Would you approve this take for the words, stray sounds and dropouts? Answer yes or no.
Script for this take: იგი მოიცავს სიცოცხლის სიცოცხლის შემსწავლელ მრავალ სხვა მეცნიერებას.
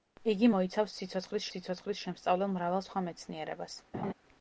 no